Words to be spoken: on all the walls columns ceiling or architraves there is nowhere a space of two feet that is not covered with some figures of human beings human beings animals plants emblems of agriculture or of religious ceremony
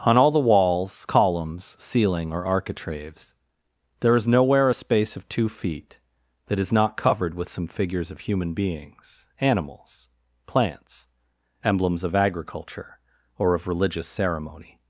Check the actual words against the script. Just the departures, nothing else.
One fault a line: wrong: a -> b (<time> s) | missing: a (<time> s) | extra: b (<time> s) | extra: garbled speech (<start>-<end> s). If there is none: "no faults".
missing: human beings (9.3 s)